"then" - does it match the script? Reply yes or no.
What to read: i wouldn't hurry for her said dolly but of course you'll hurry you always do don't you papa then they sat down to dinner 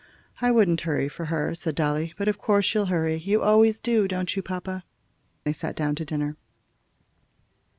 no